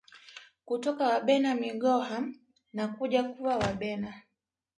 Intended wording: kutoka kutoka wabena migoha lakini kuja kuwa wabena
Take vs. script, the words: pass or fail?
fail